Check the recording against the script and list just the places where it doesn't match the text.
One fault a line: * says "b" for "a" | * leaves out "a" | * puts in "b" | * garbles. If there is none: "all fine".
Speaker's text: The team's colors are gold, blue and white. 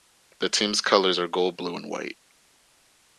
all fine